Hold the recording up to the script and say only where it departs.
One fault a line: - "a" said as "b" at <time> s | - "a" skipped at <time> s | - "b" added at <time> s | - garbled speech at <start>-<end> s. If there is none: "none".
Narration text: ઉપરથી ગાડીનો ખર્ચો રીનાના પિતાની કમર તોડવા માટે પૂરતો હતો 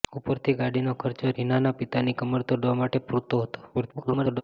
- garbled speech at 3.7-4.4 s